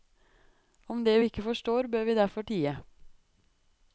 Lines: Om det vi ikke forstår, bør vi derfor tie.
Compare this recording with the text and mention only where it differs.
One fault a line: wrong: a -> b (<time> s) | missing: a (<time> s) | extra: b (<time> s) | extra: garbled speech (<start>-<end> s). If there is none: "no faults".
no faults